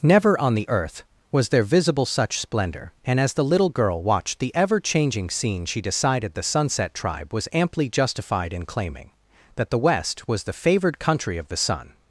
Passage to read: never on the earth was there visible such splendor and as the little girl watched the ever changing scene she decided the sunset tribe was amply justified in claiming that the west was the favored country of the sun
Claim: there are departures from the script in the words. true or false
false